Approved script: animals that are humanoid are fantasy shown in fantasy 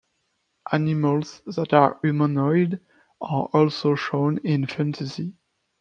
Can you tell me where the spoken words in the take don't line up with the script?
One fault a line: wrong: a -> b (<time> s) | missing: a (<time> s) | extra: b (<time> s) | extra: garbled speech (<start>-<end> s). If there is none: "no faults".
wrong: fantasy -> also (3.5 s)